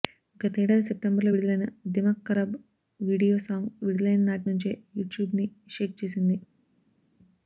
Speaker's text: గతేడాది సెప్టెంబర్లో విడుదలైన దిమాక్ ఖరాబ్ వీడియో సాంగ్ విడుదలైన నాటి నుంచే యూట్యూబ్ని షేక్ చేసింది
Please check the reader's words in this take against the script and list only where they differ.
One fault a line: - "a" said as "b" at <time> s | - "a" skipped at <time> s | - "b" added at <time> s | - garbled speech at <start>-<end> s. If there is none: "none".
none